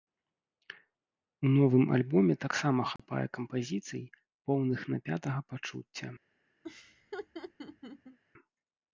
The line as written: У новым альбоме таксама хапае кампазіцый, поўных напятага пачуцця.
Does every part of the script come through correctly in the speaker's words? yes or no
yes